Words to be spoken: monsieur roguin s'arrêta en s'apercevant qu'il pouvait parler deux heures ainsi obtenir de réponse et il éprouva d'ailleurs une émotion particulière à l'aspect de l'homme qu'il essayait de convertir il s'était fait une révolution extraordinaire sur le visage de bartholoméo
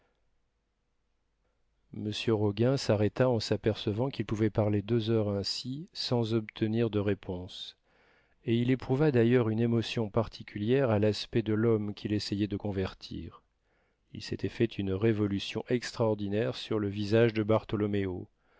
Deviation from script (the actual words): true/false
true